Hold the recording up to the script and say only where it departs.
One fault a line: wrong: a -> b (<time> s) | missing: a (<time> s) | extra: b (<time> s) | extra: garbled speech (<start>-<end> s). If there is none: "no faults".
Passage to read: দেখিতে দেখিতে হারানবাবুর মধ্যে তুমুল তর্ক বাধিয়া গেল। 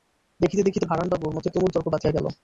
no faults